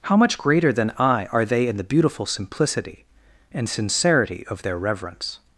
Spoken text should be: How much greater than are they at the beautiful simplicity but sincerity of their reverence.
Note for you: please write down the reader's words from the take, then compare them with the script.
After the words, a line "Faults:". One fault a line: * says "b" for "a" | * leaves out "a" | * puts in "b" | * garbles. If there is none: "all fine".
How much greater than I are they in the beautiful simplicity and sincerity of their reverence.
Faults:
* puts in "I"
* says "in" for "at"
* says "and" for "but"